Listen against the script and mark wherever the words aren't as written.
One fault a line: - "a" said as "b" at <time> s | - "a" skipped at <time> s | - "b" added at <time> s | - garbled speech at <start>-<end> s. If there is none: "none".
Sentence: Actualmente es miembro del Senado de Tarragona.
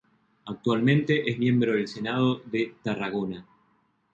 none